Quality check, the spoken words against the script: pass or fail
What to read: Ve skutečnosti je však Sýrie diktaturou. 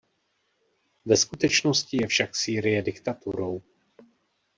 pass